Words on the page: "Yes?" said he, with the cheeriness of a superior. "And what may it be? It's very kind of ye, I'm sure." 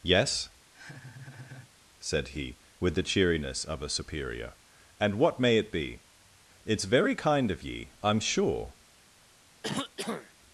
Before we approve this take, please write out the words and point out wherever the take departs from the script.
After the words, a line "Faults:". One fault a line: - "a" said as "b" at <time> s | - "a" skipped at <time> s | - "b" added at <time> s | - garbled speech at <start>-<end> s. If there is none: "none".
"Yes?" said he, with the cheeriness of a superior. "And what may it be? It's very kind of ye, I'm sure."
Faults:
none